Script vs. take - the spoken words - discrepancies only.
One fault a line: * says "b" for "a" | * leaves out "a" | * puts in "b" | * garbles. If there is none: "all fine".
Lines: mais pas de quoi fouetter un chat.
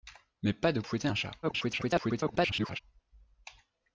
* leaves out "quoi"
* garbles